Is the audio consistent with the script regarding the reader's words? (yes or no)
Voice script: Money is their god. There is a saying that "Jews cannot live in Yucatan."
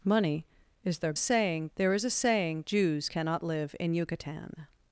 no